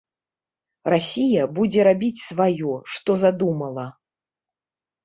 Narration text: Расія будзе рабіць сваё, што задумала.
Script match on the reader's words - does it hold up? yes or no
yes